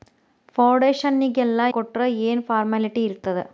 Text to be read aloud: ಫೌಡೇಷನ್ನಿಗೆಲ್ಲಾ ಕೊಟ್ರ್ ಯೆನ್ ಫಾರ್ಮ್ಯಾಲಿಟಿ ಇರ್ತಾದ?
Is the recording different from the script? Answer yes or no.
no